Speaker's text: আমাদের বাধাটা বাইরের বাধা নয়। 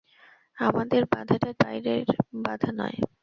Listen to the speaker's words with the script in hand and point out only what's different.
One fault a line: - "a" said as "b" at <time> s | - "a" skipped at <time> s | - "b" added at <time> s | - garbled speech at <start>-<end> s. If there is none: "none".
none